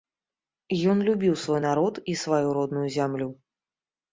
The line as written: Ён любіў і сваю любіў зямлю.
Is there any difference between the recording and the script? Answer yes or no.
yes